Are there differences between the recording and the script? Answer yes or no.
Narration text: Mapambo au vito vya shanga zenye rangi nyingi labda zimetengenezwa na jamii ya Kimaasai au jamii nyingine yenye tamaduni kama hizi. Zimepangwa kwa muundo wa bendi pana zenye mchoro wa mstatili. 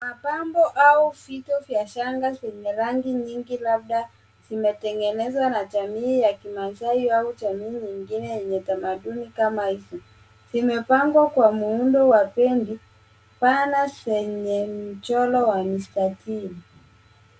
no